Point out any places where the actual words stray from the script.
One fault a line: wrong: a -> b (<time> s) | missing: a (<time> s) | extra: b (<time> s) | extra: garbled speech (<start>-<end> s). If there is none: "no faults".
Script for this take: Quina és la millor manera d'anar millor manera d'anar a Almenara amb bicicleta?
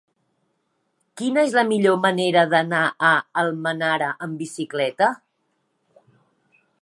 missing: millor manera d'anar (2.8 s)